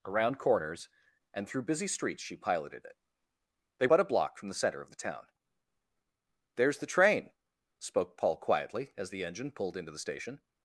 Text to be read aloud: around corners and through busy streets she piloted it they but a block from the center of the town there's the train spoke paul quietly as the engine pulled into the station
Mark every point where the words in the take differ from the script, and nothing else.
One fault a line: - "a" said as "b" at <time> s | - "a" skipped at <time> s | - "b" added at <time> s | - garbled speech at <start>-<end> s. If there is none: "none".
none